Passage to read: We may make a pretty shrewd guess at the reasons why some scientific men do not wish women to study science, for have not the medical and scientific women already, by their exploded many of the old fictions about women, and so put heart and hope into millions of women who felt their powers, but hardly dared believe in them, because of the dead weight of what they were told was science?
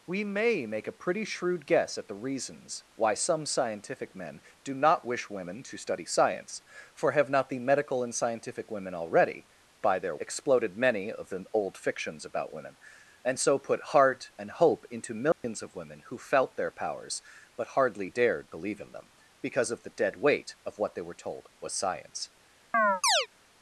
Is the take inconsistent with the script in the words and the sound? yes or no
yes